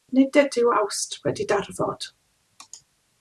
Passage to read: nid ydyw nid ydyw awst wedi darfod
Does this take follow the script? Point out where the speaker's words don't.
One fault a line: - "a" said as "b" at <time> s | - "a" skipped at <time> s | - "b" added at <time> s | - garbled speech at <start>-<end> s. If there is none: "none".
- "nid ydyw" skipped at 0.7 s